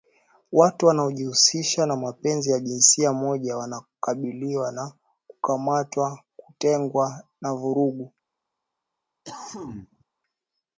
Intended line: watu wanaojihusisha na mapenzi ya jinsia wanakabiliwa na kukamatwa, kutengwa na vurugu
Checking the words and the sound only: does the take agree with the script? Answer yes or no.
no